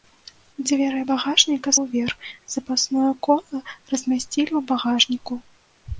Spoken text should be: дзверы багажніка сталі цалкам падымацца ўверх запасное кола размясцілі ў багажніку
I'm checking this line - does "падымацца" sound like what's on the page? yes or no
no